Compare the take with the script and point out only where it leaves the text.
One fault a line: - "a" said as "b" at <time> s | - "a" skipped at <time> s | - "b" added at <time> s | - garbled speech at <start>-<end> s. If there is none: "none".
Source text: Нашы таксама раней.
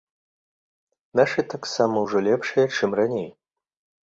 - "ўжо лепшыя чым" added at 2.0 s